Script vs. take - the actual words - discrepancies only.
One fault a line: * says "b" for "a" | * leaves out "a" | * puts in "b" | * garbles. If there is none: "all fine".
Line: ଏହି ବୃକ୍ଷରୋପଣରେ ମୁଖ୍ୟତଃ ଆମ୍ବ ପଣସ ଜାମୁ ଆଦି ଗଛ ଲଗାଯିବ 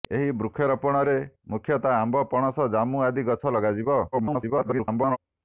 * garbles